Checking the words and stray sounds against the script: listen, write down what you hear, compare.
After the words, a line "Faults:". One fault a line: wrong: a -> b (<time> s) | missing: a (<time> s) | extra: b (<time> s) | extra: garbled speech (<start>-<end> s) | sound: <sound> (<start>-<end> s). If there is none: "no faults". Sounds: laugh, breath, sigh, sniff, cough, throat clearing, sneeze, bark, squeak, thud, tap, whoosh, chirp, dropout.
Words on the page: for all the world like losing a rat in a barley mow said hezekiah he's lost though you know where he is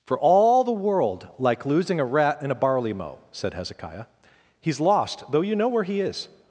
for all the world like losing a rat in a barley mow said hezekiah he's lost though you know where he is
Faults:
no faults